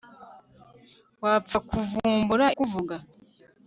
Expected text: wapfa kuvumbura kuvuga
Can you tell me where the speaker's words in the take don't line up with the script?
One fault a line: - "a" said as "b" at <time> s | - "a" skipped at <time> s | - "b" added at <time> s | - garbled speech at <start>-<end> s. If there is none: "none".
none